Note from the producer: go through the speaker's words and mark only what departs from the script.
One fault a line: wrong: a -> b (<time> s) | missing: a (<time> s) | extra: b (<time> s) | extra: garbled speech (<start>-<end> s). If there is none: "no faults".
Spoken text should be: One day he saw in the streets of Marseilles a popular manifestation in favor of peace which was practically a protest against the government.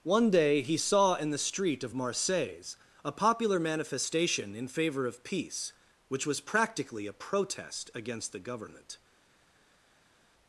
wrong: streets -> street (1.4 s)